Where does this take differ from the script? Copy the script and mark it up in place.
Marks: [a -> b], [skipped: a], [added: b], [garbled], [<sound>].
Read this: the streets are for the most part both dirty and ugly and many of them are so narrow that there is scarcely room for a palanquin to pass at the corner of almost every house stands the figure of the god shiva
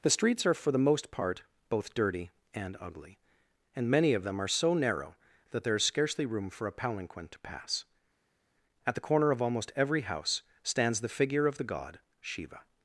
the streets are for the most part both dirty and ugly and many of them are so narrow that there is scarcely room for a palanquin to pass at the corner of almost every house stands the figure of the god shiva